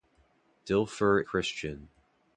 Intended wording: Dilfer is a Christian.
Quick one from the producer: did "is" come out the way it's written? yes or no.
no